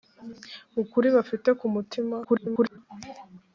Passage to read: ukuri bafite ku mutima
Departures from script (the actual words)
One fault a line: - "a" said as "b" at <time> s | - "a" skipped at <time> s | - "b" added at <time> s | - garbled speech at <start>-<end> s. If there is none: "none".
- garbled speech at 2.2-2.8 s